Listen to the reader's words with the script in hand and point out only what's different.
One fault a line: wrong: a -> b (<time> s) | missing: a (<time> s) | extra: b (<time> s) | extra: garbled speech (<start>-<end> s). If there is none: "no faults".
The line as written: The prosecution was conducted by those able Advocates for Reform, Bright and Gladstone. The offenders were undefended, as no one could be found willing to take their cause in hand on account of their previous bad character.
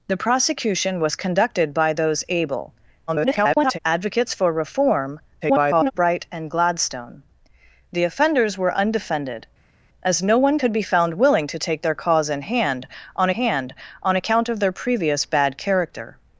extra: garbled speech (3.1-3.8 s)
extra: garbled speech (5.4-5.9 s)
extra: hand on (13.3 s)